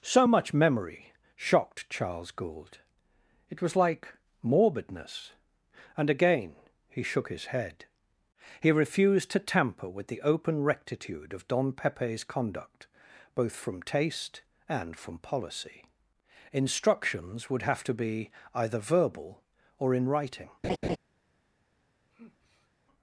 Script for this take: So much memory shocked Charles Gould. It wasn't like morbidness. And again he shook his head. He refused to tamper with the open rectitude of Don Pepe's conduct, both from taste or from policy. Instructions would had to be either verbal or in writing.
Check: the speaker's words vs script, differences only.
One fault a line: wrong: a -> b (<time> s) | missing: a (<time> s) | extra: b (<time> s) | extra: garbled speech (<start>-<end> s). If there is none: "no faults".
wrong: wasn't -> was (3.6 s)
wrong: or -> and (14.7 s)
wrong: had -> have (17.6 s)